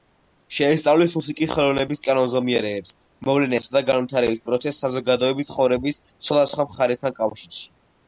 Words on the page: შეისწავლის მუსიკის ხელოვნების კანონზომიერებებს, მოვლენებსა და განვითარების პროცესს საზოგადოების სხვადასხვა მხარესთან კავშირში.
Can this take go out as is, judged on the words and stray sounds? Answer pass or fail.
fail